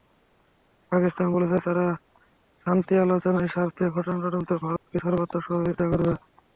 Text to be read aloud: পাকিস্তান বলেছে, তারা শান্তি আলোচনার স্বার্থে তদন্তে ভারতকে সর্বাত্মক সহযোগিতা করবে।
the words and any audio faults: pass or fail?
fail